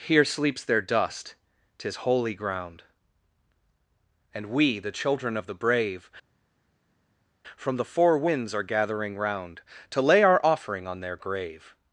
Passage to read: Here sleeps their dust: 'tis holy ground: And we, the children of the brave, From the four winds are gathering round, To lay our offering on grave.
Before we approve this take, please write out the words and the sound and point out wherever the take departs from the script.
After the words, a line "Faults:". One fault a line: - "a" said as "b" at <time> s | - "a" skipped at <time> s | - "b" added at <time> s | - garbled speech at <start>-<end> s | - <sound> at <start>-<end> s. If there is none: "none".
Here sleeps their dust: 'tis holy ground: And we, the children of the brave, From the four winds are gathering round, To lay our offering on their grave.
Faults:
- "their" added at 11.0 s